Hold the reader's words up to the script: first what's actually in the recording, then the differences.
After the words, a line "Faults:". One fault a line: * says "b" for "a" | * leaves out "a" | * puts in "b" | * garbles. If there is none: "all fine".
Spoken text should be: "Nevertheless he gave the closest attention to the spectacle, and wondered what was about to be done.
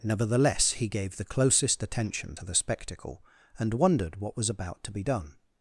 "Nevertheless he gave the closest attention to the spectacle, and wondered what was about to be done.
Faults:
all fine